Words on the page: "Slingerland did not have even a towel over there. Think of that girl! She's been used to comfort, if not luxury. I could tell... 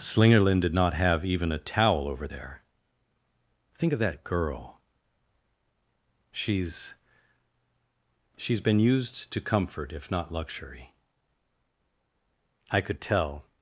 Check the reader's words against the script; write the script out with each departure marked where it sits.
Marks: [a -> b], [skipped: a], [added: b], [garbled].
"Slingerland did not have even a towel over there. Think of that girl! She's [added: She's] been used to comfort, if not luxury. I could tell...